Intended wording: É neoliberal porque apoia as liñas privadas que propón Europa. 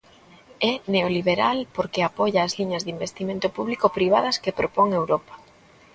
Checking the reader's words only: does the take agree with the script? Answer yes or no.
no